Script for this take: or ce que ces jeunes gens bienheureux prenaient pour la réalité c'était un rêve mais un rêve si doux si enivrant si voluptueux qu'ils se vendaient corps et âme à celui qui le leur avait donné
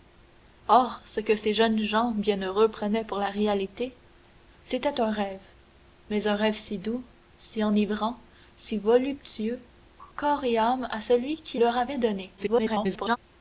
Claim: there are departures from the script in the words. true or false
true